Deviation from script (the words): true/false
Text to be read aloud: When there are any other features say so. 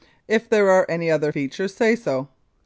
true